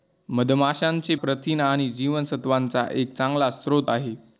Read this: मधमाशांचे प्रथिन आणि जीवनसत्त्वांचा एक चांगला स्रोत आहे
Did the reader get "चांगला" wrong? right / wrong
right